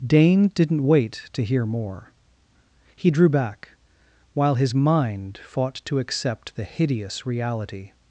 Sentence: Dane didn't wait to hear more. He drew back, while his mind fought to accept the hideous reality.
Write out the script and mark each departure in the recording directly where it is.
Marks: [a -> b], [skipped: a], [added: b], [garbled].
Dane didn't wait to hear more. He drew back, while his mind fought to accept the hideous reality.